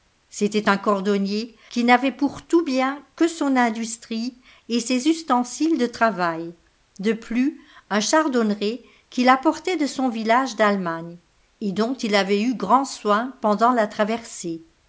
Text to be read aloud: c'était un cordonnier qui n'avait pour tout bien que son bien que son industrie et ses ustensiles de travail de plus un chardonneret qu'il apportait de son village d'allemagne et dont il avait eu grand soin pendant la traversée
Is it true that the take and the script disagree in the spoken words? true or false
true